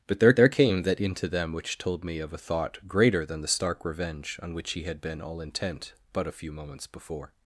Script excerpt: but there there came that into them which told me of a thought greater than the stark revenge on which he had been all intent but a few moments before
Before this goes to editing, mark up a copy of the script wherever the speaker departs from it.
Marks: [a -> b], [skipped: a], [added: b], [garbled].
but there there came that into them which told me of a thought greater than the stark revenge on which he had been all intent but a few moments before